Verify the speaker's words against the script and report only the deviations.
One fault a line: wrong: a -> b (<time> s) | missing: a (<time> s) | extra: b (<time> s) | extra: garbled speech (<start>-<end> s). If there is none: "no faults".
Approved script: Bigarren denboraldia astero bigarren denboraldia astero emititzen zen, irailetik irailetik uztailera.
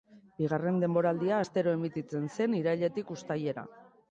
missing: bigarren denboraldia astero (1.7 s)
missing: irailetik (3.1 s)